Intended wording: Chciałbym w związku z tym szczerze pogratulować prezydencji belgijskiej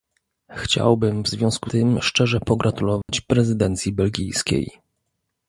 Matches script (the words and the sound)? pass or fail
fail